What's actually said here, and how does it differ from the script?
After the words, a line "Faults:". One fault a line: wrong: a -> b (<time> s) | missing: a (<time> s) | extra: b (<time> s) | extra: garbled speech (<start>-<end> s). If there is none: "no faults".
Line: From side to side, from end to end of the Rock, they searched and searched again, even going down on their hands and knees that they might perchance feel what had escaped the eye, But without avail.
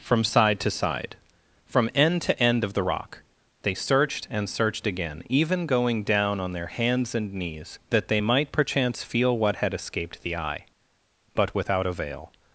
From side to side, from end to end of the Rock, they searched and searched again, even going down on their hands and knees that they might perchance feel what had escaped the eye, But without avail.
Faults:
no faults